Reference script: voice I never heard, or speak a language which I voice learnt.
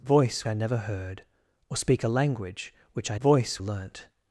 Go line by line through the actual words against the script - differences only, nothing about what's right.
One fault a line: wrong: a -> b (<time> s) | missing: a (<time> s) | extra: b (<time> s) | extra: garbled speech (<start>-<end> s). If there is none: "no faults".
no faults